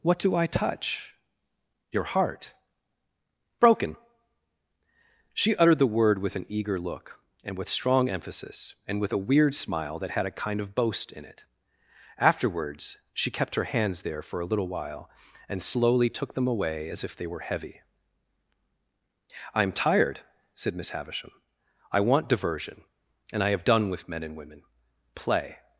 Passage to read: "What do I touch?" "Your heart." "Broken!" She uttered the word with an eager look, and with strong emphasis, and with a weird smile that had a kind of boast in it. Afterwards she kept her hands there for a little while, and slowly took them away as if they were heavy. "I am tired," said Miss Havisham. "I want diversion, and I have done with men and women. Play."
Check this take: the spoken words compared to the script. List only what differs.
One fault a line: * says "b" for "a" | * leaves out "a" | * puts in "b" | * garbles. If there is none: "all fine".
all fine